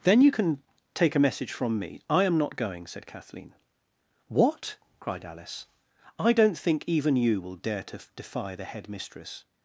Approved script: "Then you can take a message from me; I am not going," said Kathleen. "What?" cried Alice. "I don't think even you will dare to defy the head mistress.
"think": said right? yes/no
yes